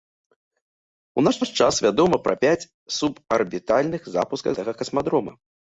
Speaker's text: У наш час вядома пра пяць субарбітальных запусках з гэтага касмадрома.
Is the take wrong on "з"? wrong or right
wrong